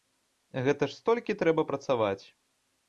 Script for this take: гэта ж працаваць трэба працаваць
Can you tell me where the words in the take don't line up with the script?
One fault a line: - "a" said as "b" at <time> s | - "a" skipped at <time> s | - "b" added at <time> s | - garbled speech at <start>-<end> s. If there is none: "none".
- "працаваць" said as "столькі" at 1.0 s